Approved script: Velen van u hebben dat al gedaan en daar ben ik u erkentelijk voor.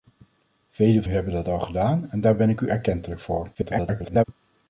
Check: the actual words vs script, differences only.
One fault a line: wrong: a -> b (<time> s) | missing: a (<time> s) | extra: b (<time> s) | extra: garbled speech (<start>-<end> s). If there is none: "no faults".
missing: van (1.0 s)
extra: garbled speech (3.5-4.2 s)